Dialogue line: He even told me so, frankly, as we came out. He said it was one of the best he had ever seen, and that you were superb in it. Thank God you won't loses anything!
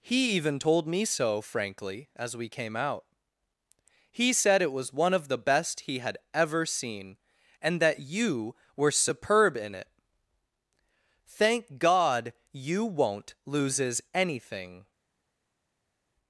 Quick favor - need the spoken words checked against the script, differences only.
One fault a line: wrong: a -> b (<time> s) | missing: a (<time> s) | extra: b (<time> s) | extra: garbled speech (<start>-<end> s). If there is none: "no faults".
no faults